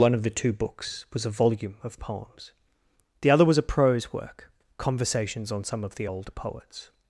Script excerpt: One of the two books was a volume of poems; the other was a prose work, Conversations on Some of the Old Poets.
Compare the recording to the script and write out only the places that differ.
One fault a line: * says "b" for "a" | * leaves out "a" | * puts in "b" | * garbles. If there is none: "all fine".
all fine